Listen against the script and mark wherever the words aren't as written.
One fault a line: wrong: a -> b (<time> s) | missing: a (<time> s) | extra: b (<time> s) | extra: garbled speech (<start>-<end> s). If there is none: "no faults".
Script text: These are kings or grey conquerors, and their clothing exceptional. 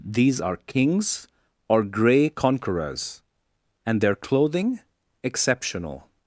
no faults